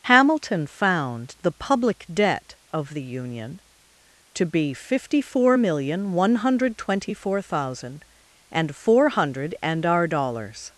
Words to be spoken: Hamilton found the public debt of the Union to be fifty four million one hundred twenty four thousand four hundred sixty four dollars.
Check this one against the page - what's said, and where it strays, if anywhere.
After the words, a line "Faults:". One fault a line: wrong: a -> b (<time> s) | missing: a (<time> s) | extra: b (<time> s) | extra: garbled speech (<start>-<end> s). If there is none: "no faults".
Hamilton found the public debt of the Union to be fifty four million one hundred twenty four thousand and four hundred and our dollars.
Faults:
extra: and (8.5 s)
wrong: sixty four -> and our (9.6 s)